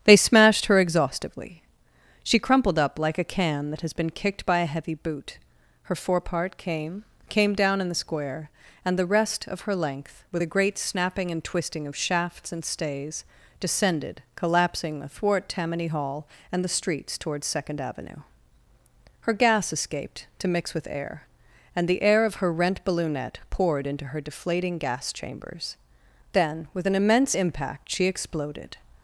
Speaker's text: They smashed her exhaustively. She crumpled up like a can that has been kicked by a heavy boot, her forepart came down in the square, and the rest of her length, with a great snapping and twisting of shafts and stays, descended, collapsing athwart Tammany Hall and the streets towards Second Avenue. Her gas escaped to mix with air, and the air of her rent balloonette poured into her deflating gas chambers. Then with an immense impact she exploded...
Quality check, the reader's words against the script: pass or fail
fail